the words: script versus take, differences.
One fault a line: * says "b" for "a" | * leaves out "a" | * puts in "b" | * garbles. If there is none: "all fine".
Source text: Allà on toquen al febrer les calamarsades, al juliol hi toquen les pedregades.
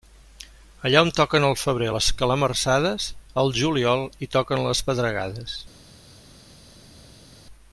all fine